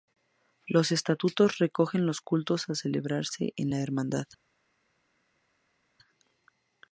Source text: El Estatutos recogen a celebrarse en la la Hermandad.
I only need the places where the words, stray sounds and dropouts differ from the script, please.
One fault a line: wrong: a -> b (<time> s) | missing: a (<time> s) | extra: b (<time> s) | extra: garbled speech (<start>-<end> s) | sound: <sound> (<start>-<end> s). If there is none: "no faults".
wrong: El -> Los (0.7 s)
extra: los cultos (2.1 s)
missing: la (3.8 s)